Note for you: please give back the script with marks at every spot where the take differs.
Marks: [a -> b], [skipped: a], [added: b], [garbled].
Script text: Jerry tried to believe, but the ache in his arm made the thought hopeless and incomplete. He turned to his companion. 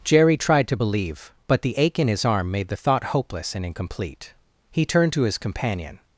Jerry tried to believe, but the ache in his arm made the thought hopeless and incomplete. He turned to his companion.